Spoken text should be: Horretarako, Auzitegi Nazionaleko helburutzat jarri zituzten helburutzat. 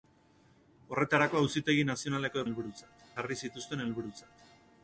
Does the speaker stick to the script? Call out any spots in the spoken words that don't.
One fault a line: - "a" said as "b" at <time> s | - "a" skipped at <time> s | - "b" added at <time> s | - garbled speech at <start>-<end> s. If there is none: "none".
none